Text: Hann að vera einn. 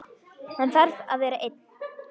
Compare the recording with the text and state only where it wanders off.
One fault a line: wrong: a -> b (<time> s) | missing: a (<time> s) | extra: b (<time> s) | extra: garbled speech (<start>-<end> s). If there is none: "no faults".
extra: þarf (0.8 s)